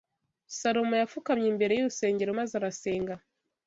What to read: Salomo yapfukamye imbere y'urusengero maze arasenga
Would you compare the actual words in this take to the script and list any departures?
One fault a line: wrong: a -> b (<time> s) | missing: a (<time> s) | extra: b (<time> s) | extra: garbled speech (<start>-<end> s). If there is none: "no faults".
no faults